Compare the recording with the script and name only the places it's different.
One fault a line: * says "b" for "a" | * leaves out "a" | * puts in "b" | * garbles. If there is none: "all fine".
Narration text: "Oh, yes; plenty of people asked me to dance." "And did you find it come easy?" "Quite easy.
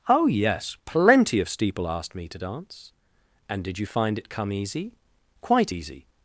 * says "steeple" for "people"